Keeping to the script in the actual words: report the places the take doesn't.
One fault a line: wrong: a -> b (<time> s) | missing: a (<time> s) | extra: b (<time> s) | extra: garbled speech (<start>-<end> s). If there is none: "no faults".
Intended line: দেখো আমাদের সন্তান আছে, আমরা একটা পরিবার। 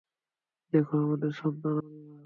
missing: আছে আমরা একটা (1.8 s)